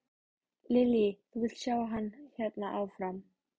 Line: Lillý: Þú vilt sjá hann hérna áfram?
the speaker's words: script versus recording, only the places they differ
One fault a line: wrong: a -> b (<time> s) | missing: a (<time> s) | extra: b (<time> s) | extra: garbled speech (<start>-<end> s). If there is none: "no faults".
no faults